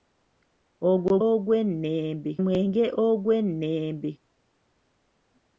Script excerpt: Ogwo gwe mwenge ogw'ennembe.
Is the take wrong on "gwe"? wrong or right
wrong